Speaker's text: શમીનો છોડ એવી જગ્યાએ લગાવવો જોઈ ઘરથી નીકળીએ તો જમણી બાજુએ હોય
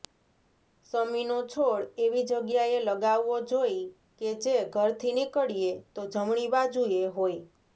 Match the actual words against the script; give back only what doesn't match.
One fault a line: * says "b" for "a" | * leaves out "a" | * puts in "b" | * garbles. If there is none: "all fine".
* puts in "કે જે"